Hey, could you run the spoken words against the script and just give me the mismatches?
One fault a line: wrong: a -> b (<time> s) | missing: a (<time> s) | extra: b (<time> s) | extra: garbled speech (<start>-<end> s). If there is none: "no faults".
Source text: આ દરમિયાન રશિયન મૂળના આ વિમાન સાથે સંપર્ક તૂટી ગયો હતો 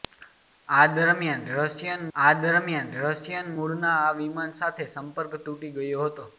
extra: આ દરમિયાન રશિયન (2.2 s)